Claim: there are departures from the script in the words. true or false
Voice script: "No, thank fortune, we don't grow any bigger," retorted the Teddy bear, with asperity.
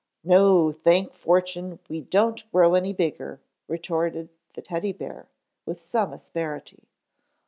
true